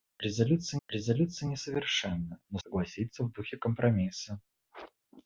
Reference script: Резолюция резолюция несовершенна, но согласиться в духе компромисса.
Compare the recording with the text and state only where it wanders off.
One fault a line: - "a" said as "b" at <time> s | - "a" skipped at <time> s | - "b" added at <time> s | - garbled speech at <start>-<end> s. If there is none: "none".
none